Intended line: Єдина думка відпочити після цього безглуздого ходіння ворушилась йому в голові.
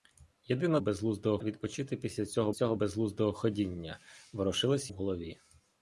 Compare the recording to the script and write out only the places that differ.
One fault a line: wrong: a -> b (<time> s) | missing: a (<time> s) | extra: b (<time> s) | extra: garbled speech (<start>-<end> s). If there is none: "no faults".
wrong: думка -> безглуздого (0.8 s)
extra: цього (2.5 s)
missing: йому (4.9 s)